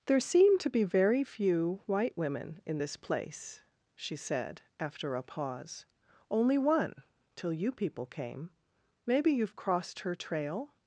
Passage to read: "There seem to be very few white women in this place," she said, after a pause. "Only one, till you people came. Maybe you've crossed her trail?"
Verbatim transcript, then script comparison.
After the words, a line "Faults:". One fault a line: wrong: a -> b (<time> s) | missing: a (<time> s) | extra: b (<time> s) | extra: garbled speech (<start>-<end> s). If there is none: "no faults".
"There seem to be very few white women in this place," she said, after a pause. "Only one, till you people came. Maybe you've crossed her trail?"
Faults:
no faults